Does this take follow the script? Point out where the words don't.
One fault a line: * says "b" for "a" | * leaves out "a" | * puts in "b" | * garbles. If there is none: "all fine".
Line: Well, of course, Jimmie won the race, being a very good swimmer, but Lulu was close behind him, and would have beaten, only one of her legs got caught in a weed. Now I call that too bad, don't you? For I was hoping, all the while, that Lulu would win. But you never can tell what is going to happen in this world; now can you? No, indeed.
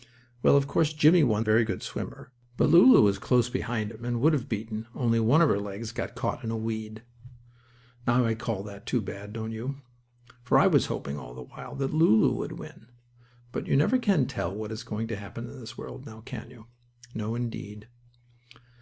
* leaves out "the race being"